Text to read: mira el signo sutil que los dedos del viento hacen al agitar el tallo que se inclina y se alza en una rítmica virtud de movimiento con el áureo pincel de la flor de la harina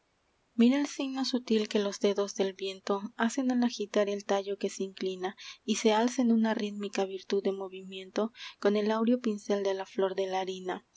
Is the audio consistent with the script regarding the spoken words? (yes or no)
yes